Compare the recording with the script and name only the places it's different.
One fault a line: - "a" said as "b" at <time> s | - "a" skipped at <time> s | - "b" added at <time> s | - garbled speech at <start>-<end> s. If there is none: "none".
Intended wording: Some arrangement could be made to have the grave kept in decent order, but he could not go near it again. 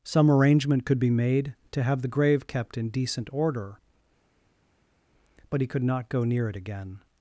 none